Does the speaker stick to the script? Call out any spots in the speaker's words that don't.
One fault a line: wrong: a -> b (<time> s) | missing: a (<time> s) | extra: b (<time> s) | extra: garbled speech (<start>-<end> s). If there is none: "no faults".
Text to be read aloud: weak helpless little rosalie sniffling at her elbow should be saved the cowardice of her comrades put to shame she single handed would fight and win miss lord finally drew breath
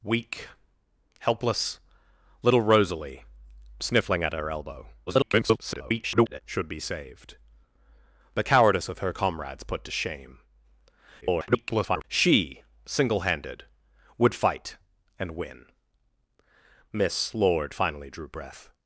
extra: garbled speech (5.1-6.4 s)
extra: garbled speech (11.2-12.0 s)